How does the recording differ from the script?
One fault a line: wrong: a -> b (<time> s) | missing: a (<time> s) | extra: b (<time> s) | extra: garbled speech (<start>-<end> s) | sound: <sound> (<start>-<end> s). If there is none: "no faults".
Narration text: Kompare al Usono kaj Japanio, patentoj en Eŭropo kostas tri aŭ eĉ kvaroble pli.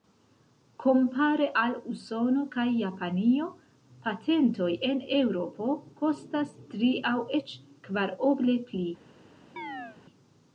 sound: chirp (9.6-10.0 s)